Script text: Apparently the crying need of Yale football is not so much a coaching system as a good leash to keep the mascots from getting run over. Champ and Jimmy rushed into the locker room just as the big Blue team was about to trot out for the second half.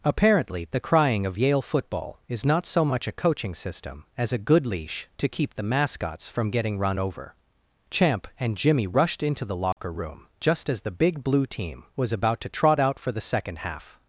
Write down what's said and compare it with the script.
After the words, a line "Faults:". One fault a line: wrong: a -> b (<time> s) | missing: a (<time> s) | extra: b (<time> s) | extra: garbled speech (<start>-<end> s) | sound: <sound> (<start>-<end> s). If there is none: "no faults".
Apparently the crying of Yale football is not so much a coaching system as a good leash to keep the mascots from getting run over. Champ and Jimmy rushed into the locker room just as the big Blue team was about to trot out for the second half.
Faults:
missing: need (1.3 s)
sound: dropout (9.7-9.8 s)